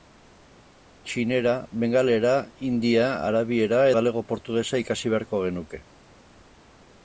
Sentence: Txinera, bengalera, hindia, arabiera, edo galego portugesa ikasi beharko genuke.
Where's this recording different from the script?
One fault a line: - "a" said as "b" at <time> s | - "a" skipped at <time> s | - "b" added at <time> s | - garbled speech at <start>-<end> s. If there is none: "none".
- "edo" skipped at 3.9 s